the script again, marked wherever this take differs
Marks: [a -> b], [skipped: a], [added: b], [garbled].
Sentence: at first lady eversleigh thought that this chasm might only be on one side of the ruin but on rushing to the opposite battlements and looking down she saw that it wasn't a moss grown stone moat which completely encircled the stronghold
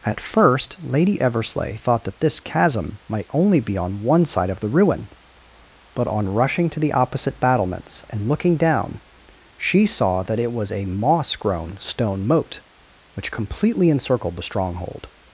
at first lady eversleigh thought that this chasm might only be on one side of the ruin but on rushing to the opposite battlements and looking down she saw that it [wasn't -> was] a moss grown stone moat which completely encircled the stronghold